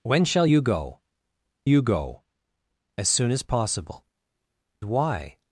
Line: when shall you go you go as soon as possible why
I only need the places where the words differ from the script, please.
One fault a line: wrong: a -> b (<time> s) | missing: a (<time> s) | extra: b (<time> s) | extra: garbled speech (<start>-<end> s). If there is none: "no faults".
no faults